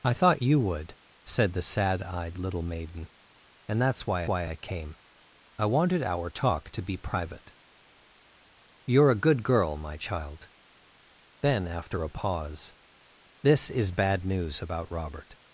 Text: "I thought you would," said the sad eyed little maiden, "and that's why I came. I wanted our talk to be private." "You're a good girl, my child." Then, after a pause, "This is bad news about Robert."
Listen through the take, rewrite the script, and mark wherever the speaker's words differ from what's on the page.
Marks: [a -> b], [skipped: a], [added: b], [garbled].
"I thought you would," said the sad eyed little maiden, "and that's why [added: why] I came. I wanted our talk to be private." "You're a good girl, my child." Then, after a pause, "This is bad news about Robert."